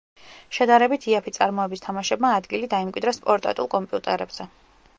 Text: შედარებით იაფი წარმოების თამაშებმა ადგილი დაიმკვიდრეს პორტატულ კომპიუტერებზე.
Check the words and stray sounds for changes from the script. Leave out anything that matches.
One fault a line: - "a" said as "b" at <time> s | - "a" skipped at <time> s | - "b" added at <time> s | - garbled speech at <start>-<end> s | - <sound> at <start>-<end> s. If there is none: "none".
none